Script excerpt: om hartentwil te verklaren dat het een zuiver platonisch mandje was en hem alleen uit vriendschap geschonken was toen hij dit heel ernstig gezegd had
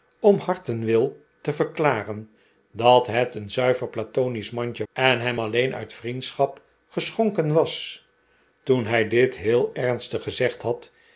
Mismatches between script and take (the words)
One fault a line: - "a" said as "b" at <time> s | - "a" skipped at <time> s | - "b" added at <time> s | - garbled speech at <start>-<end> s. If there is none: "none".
- "was" skipped at 4.9 s